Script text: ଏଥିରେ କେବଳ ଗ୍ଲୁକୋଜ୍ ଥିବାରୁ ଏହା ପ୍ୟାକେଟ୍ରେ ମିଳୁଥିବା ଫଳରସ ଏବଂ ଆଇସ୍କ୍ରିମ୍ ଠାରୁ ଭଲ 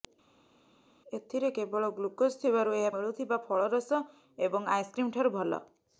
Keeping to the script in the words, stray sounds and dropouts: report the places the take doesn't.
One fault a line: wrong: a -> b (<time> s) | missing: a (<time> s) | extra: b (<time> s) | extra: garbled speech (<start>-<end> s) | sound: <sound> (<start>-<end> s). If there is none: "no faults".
missing: ପ୍ୟାକେଟ୍ରେ (2.9 s)